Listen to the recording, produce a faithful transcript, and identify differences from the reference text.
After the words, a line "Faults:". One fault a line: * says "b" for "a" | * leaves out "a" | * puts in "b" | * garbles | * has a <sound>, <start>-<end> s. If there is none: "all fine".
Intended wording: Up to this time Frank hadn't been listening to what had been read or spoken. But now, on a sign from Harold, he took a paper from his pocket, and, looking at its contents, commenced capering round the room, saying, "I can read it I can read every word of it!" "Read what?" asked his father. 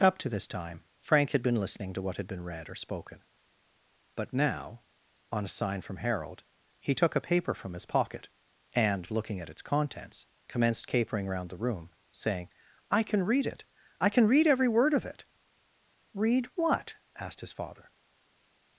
Up to this time Frank had been listening to what had been read or spoken. But now, on a sign from Harold, he took a paper from his pocket, and, looking at its contents, commenced capering round the room, saying, "I can read it I can read every word of it!" "Read what?" asked his father.
Faults:
* says "had" for "hadn't"